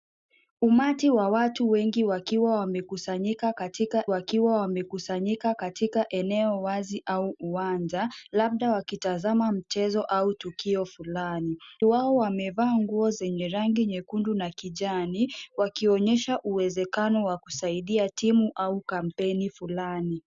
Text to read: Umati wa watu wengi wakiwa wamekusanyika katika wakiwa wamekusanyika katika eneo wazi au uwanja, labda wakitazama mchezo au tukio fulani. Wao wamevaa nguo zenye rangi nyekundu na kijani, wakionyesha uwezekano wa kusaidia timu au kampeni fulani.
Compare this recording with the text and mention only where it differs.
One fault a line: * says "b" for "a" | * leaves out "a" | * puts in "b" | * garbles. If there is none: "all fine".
all fine